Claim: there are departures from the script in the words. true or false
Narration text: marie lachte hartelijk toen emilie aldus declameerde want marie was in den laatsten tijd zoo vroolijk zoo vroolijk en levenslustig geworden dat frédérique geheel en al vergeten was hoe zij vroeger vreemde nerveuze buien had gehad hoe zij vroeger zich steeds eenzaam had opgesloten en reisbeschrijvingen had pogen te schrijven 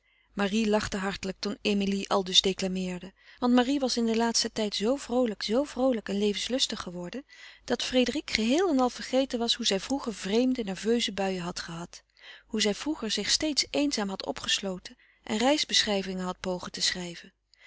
false